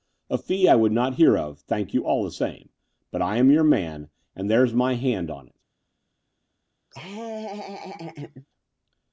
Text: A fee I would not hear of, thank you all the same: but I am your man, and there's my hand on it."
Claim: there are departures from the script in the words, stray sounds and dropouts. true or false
true